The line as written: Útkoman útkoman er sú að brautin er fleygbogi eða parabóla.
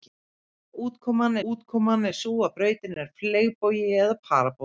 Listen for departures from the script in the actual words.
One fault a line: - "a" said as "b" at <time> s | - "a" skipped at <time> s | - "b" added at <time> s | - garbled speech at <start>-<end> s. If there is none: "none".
none